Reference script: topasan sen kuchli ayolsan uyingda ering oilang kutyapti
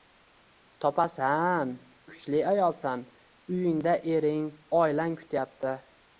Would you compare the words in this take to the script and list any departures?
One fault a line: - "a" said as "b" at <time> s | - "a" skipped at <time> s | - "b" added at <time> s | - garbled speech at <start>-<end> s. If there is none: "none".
- "sen" skipped at 1.7 s